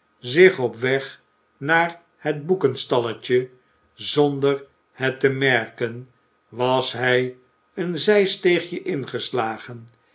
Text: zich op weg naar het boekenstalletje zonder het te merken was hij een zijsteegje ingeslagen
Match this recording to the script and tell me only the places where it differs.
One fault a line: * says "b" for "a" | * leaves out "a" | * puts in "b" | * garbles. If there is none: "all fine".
all fine